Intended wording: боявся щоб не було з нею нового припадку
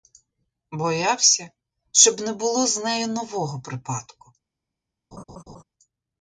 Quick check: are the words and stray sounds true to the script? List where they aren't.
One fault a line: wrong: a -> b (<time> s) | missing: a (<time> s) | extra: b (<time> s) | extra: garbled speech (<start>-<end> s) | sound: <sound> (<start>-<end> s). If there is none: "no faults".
sound: laugh (5.1-5.6 s)